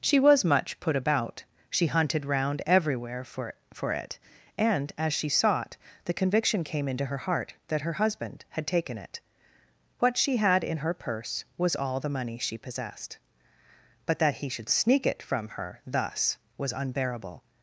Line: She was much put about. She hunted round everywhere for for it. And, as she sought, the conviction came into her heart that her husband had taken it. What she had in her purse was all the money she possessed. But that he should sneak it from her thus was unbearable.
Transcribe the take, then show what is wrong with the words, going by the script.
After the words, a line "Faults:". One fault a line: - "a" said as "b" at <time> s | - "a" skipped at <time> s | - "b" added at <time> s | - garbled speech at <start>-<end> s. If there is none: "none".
She was much put about. She hunted round everywhere for for it. And, as she sought, the conviction came into her heart that her husband had taken it. What she had in her purse was all the money she possessed. But that he should sneak it from her thus was unbearable.
Faults:
none